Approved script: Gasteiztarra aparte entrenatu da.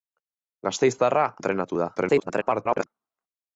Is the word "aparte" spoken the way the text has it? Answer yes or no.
no